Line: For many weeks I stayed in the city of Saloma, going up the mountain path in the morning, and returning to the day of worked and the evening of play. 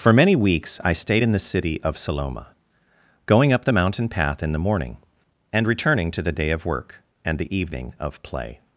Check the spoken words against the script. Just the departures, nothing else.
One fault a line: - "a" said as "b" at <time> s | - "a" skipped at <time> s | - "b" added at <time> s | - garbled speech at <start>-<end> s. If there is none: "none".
- "worked" said as "work" at 6.7 s